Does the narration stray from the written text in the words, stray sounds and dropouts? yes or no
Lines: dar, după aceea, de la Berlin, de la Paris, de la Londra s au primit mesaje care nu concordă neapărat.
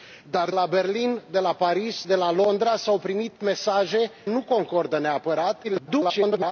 yes